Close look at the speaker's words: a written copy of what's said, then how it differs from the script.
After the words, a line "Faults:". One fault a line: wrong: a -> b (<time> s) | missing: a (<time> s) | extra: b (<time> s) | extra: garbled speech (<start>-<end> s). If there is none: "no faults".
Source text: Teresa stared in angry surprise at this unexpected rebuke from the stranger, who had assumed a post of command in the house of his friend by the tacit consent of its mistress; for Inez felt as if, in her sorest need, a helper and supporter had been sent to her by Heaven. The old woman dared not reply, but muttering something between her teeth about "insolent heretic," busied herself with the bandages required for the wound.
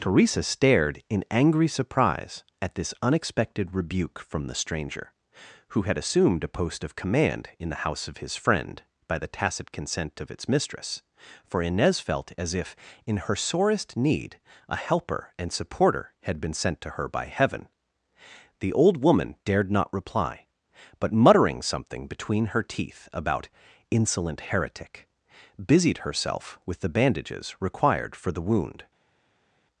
Teresa stared in angry surprise at this unexpected rebuke from the stranger, who had assumed a post of command in the house of his friend by the tacit consent of its mistress; for Inez felt as if, in her sorest need, a helper and supporter had been sent to her by Heaven. The old woman dared not reply, but muttering something between her teeth about "insolent heretic," busied herself with the bandages required for the wound.
Faults:
no faults